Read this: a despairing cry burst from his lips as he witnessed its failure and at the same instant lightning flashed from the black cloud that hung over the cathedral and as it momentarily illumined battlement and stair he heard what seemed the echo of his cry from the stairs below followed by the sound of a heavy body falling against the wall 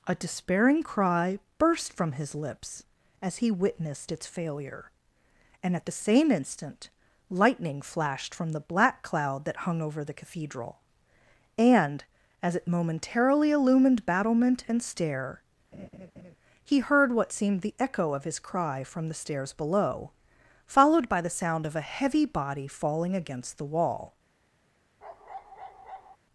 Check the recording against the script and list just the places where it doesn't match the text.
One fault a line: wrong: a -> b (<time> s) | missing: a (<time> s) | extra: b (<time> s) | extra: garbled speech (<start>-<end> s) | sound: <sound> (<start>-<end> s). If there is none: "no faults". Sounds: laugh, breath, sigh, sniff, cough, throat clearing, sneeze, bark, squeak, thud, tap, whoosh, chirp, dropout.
sound: laugh (15.7-16.4 s)
sound: bark (25.0-26.2 s)